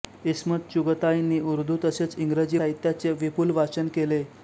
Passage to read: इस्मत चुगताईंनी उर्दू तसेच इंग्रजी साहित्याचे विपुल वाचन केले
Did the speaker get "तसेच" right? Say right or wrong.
right